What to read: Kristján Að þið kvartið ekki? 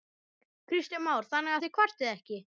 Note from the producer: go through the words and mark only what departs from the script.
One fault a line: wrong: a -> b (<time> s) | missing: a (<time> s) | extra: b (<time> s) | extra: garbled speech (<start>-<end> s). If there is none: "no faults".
extra: Már Þannig (1.1 s)